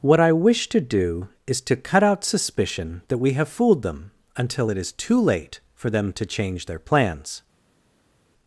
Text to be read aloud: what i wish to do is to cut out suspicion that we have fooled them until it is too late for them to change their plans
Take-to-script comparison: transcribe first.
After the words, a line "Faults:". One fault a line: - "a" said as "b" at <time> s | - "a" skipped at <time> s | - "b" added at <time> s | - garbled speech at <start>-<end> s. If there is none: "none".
what i wish to do is to cut out suspicion that we have fooled them until it is too late for them to change their plans
Faults:
none